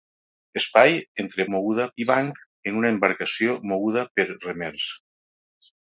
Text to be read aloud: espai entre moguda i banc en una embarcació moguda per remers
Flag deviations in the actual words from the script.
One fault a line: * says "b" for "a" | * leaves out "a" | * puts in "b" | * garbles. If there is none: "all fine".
all fine